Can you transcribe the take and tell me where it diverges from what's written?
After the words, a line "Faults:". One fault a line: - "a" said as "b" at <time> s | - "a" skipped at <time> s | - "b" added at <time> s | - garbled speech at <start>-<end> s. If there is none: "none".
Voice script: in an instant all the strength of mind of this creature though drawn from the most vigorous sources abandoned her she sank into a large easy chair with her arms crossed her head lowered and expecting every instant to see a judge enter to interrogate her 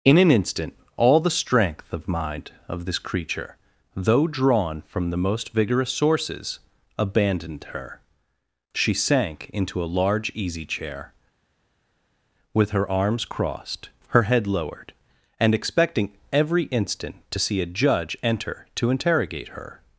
in an instant all the strength of mind of this creature though drawn from the most vigorous sources abandoned her she sank into a large easy chair with her arms crossed her head lowered and expecting every instant to see a judge enter to interrogate her
Faults:
none